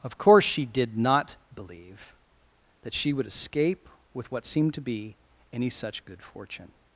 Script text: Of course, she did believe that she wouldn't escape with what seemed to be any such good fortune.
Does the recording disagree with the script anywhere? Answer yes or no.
yes